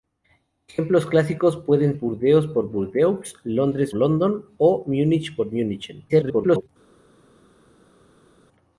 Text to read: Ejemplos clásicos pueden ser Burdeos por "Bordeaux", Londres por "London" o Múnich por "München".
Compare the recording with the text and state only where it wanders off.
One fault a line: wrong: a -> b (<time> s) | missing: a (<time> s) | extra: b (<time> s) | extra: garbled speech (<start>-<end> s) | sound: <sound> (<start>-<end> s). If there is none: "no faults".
missing: ser (1.9 s)
missing: por (3.9 s)
extra: garbled speech (6.1-6.7 s)